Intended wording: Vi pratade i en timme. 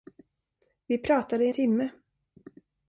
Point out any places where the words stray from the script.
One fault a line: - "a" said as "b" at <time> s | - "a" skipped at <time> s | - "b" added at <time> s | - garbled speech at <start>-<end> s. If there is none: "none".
- "en" skipped at 1.5 s